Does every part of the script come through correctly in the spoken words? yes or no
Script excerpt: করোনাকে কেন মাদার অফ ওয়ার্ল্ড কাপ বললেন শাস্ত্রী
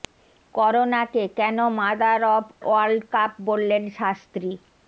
yes